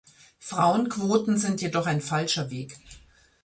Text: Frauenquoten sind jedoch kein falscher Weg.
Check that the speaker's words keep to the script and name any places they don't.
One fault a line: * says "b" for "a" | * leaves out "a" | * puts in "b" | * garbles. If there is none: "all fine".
* says "ein" for "kein"